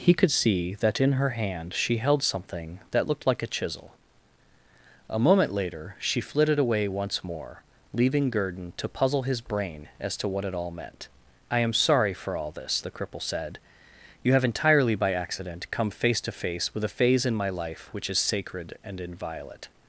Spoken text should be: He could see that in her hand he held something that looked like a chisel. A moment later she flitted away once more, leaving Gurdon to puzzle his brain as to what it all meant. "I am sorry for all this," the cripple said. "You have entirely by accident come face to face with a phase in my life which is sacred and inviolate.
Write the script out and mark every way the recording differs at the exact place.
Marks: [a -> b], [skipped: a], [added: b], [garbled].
He could see that in her hand [he -> she] held something that looked like a chisel. A moment later she flitted away once more, leaving Gurdon to puzzle his brain as to what it all meant. "I am sorry for all this," the cripple said. "You have entirely by accident come face to face with a phase in my life which is sacred and inviolate.